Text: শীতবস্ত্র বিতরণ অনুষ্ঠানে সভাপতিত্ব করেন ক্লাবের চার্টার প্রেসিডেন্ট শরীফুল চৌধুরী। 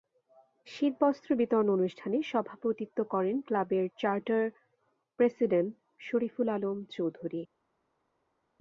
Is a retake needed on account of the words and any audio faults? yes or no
yes